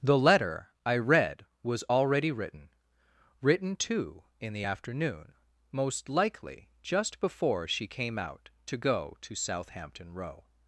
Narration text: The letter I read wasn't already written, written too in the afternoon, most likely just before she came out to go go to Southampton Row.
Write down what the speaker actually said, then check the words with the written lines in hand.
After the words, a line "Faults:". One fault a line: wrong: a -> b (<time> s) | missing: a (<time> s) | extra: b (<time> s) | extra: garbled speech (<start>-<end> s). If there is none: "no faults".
The letter I read was already written, written too in the afternoon, most likely just before she came out to go to Southampton Row.
Faults:
wrong: wasn't -> was (1.6 s)
missing: go (9.2 s)